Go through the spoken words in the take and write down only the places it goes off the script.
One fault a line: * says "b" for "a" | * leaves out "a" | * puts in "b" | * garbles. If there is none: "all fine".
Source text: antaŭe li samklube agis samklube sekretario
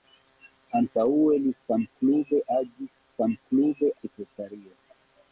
all fine